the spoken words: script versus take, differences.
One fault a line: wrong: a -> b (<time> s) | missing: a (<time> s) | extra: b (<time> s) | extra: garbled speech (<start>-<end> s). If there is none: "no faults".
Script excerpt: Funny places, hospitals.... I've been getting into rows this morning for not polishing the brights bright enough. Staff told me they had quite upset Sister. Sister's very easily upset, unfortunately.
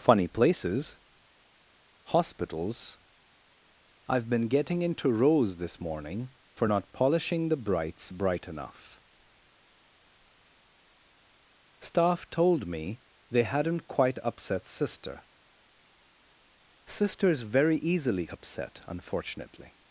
wrong: had -> hadn't (13.4 s)